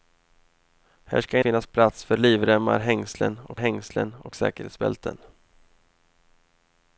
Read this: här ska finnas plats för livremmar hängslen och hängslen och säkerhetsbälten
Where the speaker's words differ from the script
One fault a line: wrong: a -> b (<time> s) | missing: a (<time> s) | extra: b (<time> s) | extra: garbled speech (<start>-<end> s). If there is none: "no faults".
no faults